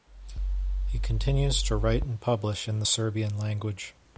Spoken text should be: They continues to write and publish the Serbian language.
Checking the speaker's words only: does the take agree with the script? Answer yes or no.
no